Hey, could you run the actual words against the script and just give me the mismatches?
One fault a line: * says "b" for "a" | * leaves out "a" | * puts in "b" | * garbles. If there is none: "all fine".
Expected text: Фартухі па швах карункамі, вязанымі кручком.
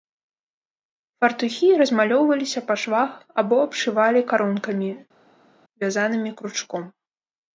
* puts in "размалёўваліся"
* puts in "або абшывалі"